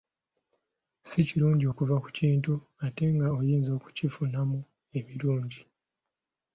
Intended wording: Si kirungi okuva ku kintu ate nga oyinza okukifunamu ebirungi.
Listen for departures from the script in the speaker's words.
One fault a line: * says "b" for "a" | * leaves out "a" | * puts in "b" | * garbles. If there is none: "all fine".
all fine